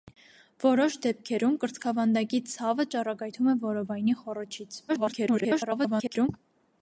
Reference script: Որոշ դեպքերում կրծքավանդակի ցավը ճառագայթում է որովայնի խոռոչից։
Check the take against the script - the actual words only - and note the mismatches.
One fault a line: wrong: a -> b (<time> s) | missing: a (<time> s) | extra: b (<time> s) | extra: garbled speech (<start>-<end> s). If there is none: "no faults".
extra: garbled speech (4.9-6.3 s)